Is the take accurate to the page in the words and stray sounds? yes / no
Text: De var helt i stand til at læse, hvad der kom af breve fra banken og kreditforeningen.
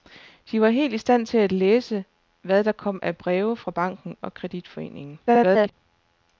no